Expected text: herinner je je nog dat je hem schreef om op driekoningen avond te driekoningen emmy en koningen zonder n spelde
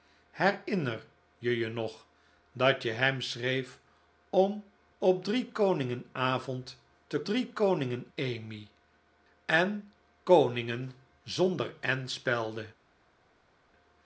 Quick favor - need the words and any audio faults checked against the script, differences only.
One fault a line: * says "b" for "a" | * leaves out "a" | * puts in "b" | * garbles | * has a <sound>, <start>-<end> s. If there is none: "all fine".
all fine